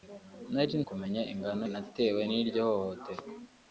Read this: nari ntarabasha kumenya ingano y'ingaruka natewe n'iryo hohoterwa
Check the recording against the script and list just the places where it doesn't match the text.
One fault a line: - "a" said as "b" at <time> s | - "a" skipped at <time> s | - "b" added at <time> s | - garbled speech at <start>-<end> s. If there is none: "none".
- "ntarabasha" skipped at 0.8 s
- "y'ingaruka" skipped at 1.6 s